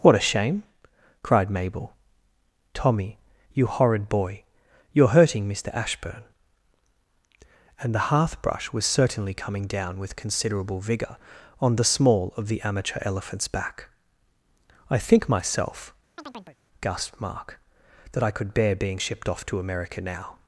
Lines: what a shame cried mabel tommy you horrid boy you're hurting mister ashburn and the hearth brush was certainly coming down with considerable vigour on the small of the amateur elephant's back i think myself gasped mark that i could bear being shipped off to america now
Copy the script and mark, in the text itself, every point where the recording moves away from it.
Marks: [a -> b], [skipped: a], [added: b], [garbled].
what a shame cried mabel tommy you horrid boy you're hurting mister ashburn and the hearth brush was certainly coming down with considerable vigour on the small of the amateur elephant's back i think myself gasped mark that i could bear being shipped off to america now